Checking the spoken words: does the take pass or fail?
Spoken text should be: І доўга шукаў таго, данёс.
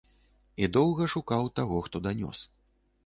fail